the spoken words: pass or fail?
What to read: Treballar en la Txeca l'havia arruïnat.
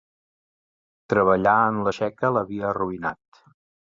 pass